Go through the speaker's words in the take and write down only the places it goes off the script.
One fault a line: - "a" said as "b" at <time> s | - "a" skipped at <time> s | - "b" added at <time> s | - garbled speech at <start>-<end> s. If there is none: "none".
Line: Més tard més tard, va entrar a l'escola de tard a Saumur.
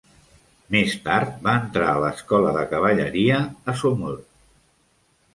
- "més tard" skipped at 1.3 s
- "tard" said as "cavalleria" at 2.7 s